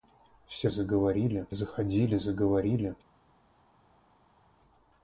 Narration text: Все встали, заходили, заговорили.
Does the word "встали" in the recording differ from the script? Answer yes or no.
yes